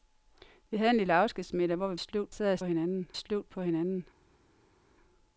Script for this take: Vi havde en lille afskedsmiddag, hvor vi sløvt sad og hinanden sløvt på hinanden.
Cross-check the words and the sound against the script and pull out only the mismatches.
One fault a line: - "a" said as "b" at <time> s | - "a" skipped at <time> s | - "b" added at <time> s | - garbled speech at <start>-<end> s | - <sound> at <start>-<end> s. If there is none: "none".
none